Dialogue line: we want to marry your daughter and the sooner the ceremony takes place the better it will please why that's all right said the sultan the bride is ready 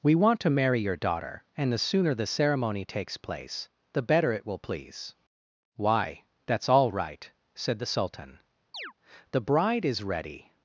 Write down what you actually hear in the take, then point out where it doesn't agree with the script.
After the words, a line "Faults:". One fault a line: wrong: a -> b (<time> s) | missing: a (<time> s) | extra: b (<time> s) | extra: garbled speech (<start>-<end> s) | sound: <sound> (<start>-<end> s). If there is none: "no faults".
we want to marry your daughter and the sooner the ceremony takes place the better it will please why that's all right said the sultan the bride is ready
Faults:
sound: chirp (8.7-8.9 s)